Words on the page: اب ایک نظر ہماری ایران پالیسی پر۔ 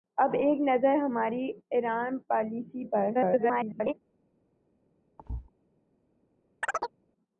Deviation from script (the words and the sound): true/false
true